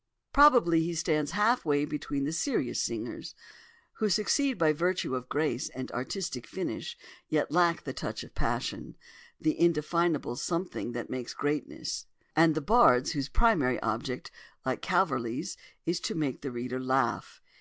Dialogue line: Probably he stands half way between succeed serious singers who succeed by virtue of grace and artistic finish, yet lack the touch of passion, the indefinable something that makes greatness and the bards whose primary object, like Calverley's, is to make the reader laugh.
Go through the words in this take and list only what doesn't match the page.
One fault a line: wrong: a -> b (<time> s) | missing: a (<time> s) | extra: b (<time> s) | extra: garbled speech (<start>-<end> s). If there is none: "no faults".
wrong: succeed -> the (2.2 s)